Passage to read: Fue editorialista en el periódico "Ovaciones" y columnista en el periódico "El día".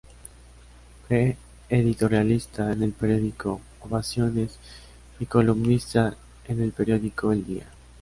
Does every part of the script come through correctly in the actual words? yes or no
yes